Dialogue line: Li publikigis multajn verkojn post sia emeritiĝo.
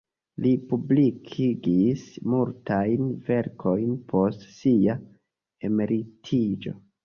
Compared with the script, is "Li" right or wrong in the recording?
right